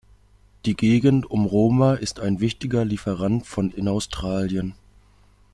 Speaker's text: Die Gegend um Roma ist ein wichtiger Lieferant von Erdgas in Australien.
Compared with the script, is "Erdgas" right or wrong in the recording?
wrong